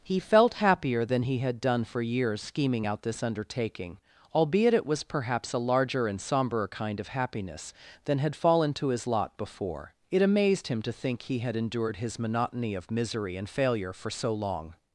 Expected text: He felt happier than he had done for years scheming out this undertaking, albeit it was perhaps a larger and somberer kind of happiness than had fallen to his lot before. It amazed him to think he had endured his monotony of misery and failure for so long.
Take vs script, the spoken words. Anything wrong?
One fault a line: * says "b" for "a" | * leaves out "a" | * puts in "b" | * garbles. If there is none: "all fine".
all fine